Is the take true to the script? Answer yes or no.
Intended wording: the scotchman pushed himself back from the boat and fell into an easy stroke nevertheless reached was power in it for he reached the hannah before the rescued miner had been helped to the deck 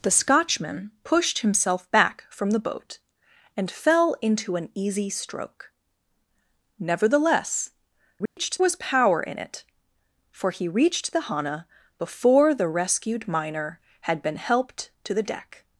yes